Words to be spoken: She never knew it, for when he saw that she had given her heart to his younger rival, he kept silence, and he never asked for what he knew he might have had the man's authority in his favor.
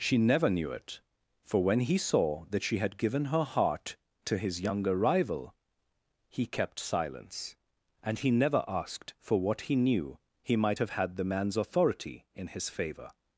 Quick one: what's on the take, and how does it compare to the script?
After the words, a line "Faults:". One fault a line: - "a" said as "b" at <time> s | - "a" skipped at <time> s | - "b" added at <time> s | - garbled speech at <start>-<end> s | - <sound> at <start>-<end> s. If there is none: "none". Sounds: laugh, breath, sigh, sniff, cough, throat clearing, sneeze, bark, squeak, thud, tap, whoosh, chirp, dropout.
She never knew it, for when he saw that she had given her heart to his younger rival, he kept silence, and he never asked for what he knew he might have had the man's authority in his favor.
Faults:
none